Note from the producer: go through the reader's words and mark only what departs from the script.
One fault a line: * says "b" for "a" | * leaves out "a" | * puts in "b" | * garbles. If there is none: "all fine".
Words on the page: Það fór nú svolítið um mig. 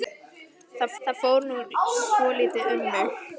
* puts in "það"